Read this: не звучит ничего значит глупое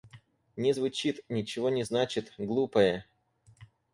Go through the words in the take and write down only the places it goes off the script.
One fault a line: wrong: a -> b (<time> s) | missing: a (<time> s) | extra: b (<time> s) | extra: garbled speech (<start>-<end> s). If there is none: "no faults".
extra: не (1.7 s)